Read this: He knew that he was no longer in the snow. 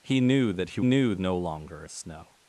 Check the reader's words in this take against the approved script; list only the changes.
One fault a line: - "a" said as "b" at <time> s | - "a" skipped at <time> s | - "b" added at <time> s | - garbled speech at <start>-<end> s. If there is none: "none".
- "was" said as "knew" at 0.8 s
- "in" skipped at 1.8 s